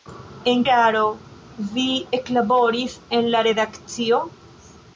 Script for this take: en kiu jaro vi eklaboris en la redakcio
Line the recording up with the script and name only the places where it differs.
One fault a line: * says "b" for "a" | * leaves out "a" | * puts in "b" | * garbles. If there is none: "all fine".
* leaves out "kiu"